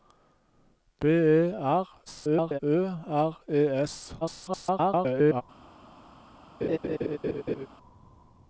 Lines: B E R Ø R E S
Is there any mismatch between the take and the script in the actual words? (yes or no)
yes